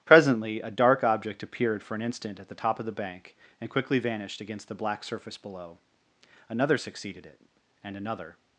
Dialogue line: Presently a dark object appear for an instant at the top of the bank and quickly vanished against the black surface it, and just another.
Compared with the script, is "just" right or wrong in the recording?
wrong